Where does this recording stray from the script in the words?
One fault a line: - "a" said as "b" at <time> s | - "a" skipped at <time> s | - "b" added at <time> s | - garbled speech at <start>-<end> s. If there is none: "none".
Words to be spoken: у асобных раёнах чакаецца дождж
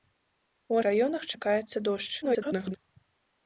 - "асобных" skipped at 0.8 s
- garbled speech at 2.2-2.8 s